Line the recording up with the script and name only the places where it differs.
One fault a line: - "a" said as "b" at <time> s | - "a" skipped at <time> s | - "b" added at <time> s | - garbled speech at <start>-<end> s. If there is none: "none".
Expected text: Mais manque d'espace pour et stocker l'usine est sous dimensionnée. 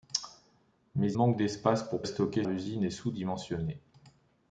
none